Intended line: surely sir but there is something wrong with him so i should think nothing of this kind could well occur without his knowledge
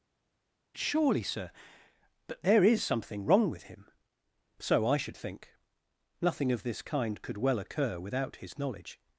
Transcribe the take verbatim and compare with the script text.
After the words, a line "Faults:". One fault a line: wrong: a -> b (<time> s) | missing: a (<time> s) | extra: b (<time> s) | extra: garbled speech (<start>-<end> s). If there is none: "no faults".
surely sir but there is something wrong with him so i should think nothing of this kind could well occur without his knowledge
Faults:
no faults